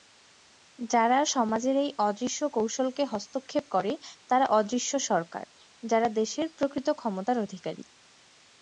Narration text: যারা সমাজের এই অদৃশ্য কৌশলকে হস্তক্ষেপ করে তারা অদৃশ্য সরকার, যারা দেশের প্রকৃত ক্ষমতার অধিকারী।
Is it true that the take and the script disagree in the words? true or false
false